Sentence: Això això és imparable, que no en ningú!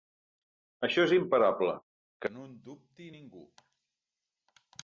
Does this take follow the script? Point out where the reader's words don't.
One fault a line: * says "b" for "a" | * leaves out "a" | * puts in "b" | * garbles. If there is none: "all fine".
* leaves out "això"
* puts in "dubti"